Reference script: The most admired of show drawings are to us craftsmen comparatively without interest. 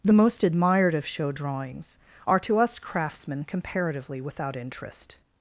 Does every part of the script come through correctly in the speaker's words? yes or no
yes